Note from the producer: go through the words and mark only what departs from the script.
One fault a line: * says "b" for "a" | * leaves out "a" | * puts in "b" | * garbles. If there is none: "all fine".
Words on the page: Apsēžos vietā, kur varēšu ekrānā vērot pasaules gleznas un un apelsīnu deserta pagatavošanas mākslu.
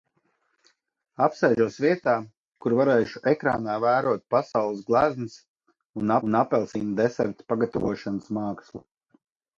all fine